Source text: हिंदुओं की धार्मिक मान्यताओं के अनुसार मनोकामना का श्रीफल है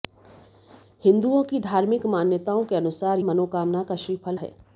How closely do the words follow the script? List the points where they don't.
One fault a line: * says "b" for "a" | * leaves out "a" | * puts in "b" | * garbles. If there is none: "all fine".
all fine